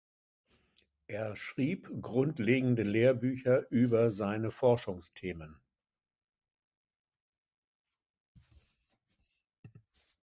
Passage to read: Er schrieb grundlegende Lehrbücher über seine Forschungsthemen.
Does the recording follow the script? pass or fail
pass